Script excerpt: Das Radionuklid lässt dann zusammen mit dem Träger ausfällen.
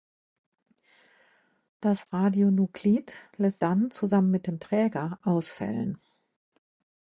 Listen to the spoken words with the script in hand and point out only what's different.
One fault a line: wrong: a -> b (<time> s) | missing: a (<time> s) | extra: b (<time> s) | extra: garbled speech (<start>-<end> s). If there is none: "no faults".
no faults